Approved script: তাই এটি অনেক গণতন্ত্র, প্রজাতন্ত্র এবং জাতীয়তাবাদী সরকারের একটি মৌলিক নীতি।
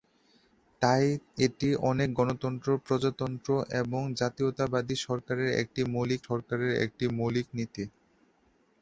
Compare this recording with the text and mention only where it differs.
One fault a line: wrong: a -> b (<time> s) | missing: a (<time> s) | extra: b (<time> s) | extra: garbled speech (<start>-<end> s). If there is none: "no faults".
extra: সরকারের একটি মৌলিক (6.3 s)